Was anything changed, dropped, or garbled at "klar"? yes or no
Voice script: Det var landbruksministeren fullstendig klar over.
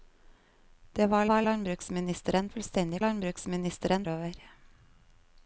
yes